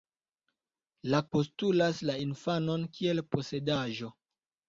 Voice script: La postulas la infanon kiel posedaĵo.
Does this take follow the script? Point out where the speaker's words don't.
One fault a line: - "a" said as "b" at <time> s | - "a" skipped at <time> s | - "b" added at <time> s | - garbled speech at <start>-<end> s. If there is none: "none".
none